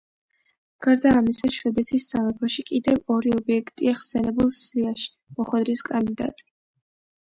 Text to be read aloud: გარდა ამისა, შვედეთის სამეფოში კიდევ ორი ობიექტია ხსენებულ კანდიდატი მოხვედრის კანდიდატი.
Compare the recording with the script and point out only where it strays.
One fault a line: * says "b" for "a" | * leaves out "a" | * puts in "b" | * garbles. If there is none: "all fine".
* says "სიაში" for "კანდიდატი"